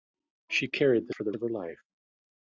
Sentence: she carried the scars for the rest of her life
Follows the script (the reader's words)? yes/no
no